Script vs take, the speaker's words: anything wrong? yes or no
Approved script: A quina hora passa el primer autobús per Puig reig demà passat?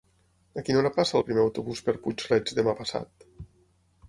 no